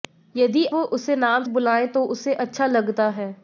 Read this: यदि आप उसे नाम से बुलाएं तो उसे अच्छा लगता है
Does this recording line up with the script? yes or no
no